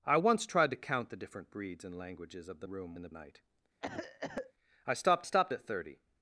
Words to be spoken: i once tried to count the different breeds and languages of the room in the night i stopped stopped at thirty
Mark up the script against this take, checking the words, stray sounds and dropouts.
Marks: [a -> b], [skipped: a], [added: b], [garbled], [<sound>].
i once tried to count the different breeds and languages of the room in the night [cough] i stopped stopped at thirty